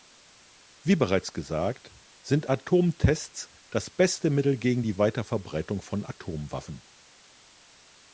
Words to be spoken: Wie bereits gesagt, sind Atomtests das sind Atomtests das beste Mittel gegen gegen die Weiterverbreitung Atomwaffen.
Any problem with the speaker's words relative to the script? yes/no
yes